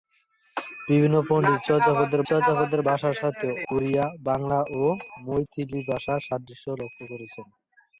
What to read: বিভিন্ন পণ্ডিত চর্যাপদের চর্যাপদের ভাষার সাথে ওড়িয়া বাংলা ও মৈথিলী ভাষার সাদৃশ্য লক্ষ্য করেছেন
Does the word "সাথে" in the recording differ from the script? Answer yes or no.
no